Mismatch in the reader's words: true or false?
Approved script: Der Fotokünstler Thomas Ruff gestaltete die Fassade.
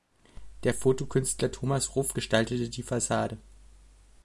false